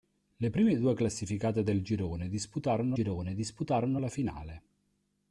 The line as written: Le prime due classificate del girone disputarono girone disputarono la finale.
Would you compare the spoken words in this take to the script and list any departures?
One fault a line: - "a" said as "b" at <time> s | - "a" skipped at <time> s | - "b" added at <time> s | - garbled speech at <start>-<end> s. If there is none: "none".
none